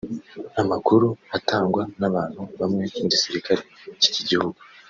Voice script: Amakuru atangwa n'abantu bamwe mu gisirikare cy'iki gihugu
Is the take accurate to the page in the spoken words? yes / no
yes